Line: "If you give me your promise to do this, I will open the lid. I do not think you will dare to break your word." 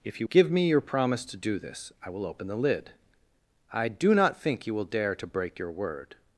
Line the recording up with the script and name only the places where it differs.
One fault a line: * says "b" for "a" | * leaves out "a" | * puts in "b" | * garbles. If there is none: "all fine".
all fine